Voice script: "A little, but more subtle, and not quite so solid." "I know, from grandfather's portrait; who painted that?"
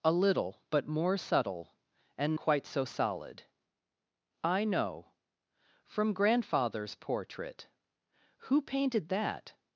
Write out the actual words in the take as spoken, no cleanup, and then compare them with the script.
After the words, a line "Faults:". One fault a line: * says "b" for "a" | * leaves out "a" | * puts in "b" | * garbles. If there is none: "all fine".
"A little, but more subtle, and quite so solid." "I know, from grandfather's portrait; who painted that?"
Faults:
* leaves out "not"